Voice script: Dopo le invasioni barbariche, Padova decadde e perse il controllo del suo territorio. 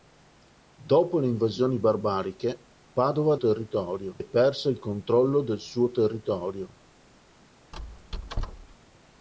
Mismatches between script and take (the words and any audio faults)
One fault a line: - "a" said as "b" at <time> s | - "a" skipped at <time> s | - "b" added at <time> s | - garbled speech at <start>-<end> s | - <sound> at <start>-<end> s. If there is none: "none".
- "decadde" said as "territorio" at 3.4 s
- squeak at 7.7-8.8 s